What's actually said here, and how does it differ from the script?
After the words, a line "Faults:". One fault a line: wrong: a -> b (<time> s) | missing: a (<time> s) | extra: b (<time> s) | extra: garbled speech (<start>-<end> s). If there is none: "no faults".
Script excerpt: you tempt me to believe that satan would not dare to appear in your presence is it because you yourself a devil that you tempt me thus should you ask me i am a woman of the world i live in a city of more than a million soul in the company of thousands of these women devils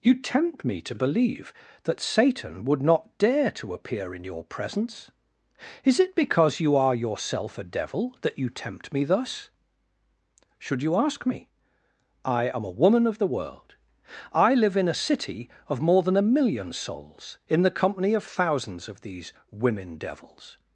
you tempt me to believe that satan would not dare to appear in your presence is it because you are yourself a devil that you tempt me thus should you ask me i am a woman of the world i live in a city of more than a million souls in the company of thousands of these women devils
Faults:
extra: are (6.8 s)
wrong: soul -> souls (16.7 s)